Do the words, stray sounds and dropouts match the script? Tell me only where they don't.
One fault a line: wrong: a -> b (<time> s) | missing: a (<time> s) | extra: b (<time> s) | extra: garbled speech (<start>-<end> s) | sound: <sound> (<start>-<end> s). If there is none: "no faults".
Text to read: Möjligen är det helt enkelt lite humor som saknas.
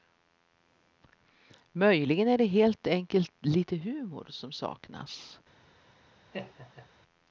sound: laugh (6.3-6.9 s)